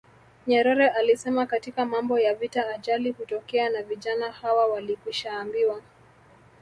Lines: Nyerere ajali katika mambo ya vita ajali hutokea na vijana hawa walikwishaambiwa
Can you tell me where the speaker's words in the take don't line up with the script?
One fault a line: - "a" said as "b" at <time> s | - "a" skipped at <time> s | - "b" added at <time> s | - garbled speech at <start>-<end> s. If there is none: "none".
- "ajali" said as "alisema" at 0.9 s